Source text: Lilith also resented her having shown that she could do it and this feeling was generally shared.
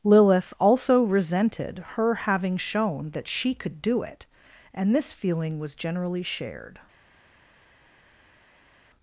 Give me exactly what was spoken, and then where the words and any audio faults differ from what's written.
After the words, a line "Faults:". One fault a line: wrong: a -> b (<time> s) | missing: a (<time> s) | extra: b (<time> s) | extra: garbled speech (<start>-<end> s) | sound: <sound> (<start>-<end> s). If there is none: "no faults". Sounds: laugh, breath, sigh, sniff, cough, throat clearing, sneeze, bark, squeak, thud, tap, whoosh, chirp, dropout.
Lilith also resented her having shown that she could do it and this feeling was generally shared.
Faults:
no faults